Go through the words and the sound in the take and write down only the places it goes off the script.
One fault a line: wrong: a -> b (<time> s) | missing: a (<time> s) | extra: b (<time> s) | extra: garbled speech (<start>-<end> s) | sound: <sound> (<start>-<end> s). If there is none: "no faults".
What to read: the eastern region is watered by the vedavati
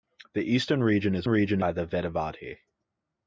wrong: watered -> region (1.3 s)